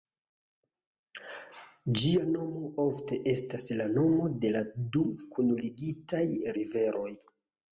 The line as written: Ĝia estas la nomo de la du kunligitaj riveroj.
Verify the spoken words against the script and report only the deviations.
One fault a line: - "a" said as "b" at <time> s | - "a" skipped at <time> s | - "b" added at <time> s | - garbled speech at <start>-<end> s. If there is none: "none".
- "nomo ofte" added at 2.4 s